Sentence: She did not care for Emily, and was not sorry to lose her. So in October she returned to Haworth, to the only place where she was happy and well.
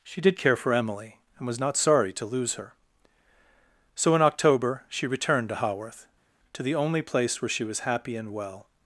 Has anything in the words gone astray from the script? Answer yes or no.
yes